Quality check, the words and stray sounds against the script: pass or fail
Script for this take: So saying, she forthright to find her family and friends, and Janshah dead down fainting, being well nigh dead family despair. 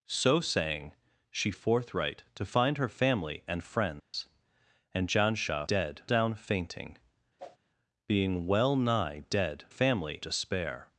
fail